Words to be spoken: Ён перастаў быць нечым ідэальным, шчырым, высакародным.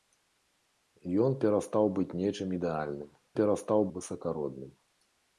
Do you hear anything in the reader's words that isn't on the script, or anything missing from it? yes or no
yes